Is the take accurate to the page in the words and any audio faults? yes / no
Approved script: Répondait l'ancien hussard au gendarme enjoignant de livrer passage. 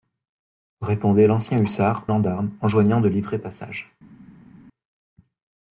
no